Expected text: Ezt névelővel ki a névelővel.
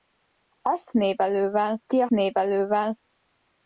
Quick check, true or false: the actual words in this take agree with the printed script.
true